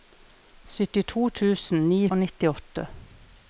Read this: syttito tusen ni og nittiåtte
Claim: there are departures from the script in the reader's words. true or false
false